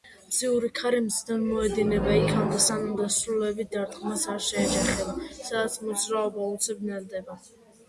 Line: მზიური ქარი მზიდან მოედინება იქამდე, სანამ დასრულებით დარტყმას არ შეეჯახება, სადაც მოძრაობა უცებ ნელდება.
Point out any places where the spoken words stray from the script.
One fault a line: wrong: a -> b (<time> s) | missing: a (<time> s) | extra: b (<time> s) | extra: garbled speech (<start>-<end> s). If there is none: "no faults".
no faults